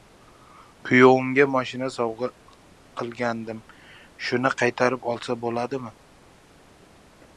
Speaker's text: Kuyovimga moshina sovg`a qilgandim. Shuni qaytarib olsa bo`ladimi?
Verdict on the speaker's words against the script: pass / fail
pass